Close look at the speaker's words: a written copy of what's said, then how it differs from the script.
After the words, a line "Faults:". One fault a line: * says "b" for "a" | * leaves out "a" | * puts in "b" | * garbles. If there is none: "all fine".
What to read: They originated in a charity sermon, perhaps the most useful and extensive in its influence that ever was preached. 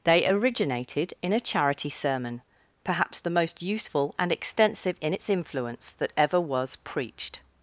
They originated in a charity sermon, perhaps the most useful and extensive in its influence that ever was preached.
Faults:
all fine